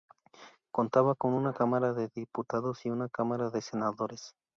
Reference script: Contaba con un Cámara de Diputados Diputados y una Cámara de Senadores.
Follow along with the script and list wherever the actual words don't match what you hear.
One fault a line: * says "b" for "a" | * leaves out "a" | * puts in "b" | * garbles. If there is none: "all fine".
* says "una" for "un"
* leaves out "Diputados"